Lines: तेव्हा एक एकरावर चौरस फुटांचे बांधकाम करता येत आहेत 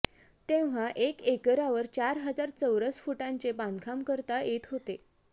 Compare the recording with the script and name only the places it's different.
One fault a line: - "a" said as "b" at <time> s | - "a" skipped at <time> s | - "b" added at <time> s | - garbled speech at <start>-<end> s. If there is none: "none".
- "चार हजार" added at 1.9 s
- "आहेत" said as "होते" at 4.7 s